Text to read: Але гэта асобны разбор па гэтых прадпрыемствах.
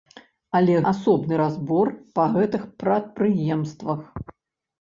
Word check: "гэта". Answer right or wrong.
wrong